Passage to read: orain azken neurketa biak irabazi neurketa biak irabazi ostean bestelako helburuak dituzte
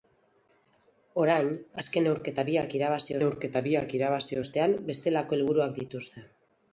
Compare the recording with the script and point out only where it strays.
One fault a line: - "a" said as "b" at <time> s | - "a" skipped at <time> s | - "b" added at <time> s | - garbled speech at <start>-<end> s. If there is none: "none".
none